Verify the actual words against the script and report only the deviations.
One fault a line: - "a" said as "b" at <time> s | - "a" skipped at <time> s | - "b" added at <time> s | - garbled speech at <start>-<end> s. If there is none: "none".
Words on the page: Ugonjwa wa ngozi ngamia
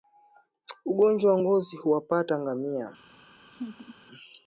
- "huwapata" added at 1.8 s